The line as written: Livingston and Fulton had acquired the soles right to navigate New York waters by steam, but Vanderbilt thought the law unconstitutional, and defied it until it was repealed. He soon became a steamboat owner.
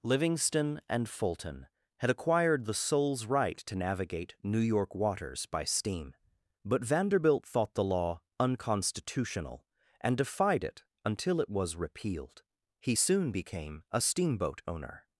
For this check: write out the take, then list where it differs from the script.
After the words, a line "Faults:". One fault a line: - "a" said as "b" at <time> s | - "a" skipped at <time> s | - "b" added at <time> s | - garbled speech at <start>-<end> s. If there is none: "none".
Livingston and Fulton had acquired the soles right to navigate New York waters by steam, but Vanderbilt thought the law unconstitutional, and defied it until it was repealed. He soon became a steamboat owner.
Faults:
none